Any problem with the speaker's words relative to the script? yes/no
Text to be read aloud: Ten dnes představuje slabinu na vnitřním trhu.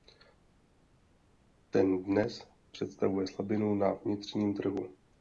no